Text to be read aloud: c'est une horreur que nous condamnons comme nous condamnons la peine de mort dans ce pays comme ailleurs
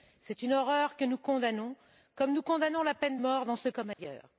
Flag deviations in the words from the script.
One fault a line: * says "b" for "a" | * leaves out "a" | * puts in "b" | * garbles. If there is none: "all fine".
* leaves out "de"
* leaves out "pays"